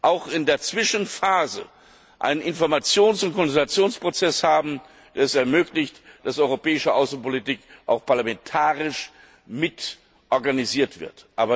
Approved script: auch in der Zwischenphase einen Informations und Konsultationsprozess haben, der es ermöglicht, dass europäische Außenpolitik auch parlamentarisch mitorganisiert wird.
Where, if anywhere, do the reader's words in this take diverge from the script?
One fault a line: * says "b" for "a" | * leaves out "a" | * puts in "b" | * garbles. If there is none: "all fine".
all fine